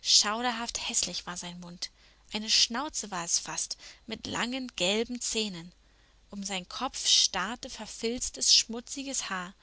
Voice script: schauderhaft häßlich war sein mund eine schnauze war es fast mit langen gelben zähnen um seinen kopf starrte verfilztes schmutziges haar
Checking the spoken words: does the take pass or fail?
pass